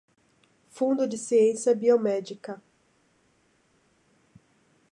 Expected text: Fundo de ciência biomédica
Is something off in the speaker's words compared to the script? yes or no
no